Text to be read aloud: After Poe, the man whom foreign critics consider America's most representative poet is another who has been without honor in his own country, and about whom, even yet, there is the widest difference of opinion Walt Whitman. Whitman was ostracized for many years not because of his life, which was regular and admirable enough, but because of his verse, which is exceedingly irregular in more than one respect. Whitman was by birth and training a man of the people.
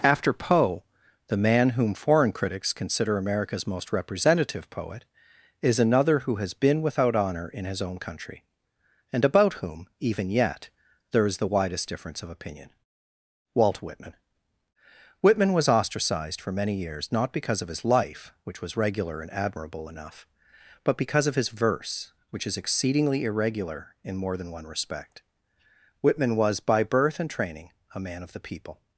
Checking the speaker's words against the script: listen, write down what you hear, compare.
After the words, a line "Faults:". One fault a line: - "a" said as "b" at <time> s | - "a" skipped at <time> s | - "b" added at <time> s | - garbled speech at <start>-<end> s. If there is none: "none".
After Poe, the man whom foreign critics consider America's most representative poet is another who has been without honor in his own country, and about whom, even yet, there is the widest difference of opinion Walt Whitman. Whitman was ostracized for many years not because of his life, which was regular and admirable enough, but because of his verse, which is exceedingly irregular in more than one respect. Whitman was by birth and training a man of the people.
Faults:
none